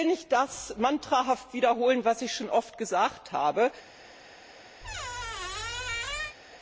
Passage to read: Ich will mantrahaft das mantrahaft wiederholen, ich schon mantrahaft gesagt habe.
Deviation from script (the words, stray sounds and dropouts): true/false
true